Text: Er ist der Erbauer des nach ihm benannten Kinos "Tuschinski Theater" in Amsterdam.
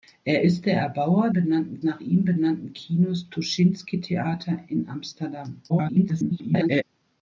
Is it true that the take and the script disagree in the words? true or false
true